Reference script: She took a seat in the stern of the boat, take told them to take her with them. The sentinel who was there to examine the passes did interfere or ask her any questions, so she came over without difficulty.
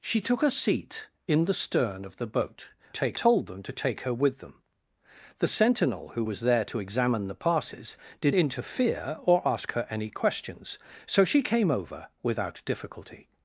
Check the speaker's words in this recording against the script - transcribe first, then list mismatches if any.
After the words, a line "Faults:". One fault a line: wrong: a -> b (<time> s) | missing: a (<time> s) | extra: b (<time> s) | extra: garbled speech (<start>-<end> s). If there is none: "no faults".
She took a seat in the stern of the boat, take told them to take her with them. The sentinel who was there to examine the passes did interfere or ask her any questions, so she came over without difficulty.
Faults:
no faults